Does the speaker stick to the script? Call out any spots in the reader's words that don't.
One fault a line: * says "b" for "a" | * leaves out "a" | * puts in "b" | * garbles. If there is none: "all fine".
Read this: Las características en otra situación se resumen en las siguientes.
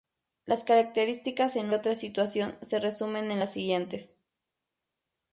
all fine